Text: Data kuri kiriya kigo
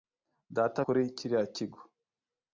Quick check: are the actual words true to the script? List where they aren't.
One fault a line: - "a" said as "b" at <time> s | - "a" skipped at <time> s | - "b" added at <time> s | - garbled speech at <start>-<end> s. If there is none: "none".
none